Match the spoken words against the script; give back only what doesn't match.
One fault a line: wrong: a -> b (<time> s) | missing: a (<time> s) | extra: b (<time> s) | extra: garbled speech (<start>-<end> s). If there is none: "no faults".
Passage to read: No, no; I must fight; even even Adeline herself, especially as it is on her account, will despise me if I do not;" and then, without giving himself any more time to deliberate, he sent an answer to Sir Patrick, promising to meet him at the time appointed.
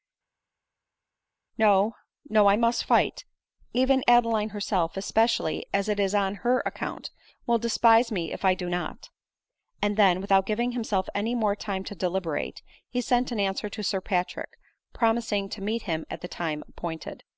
missing: even (4.0 s)